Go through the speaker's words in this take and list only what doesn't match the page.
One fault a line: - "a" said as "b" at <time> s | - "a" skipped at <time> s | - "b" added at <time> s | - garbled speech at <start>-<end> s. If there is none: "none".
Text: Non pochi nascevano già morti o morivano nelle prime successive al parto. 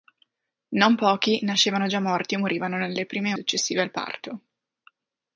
none